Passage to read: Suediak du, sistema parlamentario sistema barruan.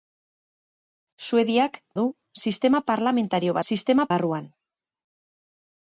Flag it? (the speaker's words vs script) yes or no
no